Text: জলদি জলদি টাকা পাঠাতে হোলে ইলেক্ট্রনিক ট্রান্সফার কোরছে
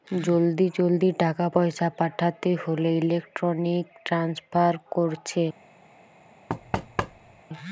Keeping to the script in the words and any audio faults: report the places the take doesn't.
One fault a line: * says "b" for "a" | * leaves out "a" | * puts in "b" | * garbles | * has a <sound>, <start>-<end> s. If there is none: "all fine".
* puts in "পয়সা"
* has a thud, 6.5-7.4 s